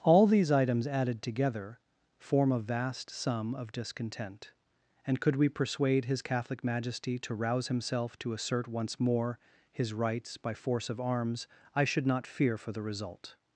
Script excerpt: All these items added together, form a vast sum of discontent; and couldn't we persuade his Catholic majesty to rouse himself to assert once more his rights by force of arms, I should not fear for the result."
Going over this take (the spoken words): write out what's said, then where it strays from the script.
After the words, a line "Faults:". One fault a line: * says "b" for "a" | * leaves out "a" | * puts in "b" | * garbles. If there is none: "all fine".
All these items added together, form a vast sum of discontent; and could we persuade his Catholic majesty to rouse himself to assert once more his rights by force of arms, I should not fear for the result."
Faults:
* says "could" for "couldn't"